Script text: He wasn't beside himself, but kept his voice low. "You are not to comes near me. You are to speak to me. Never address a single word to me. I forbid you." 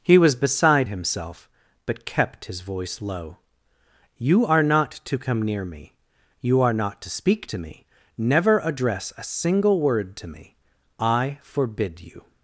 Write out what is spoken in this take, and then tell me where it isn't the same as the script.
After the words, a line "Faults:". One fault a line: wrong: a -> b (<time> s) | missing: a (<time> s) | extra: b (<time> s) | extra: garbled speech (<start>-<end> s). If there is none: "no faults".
He was beside himself, but kept his voice low. "You are not to come near me. You are not to speak to me. Never address a single word to me. I forbid you."
Faults:
wrong: wasn't -> was (0.2 s)
wrong: comes -> come (5.2 s)
extra: not (6.7 s)